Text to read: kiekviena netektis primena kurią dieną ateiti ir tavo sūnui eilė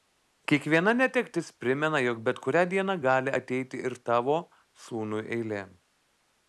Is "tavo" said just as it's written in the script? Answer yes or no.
yes